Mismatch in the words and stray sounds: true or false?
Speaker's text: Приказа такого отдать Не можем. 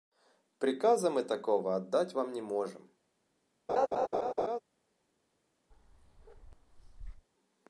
true